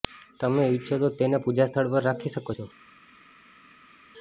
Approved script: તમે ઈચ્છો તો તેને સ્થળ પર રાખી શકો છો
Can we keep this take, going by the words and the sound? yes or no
no